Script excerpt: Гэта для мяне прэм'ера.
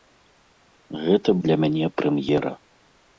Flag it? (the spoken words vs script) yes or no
no